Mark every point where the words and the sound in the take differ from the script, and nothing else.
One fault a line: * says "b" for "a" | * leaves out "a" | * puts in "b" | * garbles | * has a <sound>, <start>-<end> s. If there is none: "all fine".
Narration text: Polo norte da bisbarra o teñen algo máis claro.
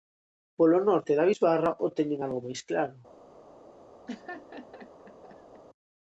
* has a laugh, 4.1-5.6 s